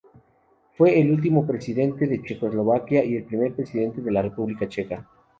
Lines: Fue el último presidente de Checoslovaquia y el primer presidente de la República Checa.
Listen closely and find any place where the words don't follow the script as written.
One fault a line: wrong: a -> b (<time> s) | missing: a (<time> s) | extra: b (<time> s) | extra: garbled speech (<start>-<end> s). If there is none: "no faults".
no faults